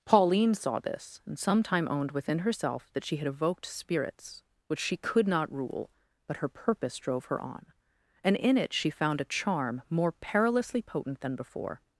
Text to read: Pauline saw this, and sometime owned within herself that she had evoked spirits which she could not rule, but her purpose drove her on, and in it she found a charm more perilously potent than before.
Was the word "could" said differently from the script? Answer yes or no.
no